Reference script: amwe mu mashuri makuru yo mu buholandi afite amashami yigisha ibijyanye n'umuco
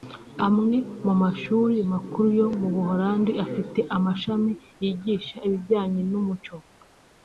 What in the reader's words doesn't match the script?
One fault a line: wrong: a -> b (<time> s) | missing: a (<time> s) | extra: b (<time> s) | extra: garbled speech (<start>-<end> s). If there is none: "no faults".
no faults